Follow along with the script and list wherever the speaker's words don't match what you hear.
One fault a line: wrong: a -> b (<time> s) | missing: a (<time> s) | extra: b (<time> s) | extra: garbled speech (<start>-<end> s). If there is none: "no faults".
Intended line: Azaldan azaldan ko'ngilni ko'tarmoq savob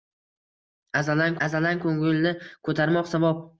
no faults